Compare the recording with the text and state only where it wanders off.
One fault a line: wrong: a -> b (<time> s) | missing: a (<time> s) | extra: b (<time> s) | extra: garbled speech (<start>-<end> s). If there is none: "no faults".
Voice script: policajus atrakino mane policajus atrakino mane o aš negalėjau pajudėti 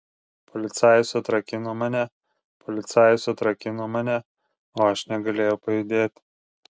no faults